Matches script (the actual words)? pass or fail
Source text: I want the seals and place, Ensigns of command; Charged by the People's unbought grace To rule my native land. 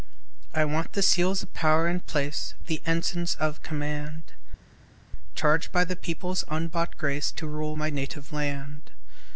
fail